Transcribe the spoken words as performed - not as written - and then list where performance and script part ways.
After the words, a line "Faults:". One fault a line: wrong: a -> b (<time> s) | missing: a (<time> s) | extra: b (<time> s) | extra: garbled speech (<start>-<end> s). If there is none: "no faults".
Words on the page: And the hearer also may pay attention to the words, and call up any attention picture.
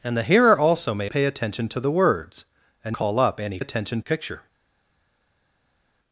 And the hearer also may pay attention to the words, and call up any attention picture.
Faults:
no faults